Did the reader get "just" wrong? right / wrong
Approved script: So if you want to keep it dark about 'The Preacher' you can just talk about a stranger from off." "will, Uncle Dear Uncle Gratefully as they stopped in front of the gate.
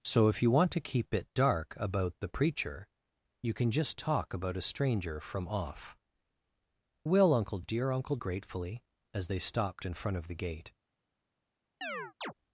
right